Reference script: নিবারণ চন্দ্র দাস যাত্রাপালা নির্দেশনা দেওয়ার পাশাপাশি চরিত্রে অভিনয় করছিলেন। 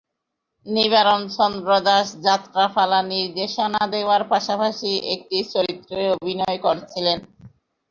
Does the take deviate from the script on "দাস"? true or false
false